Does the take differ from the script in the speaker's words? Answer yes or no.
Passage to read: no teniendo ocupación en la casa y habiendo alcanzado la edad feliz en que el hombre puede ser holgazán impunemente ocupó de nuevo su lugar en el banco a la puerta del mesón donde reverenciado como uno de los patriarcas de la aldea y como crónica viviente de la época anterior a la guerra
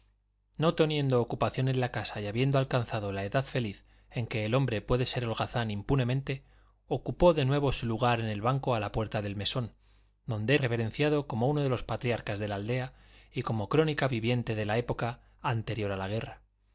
no